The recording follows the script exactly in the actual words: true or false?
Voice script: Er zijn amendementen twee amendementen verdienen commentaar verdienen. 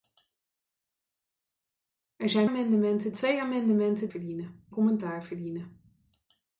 true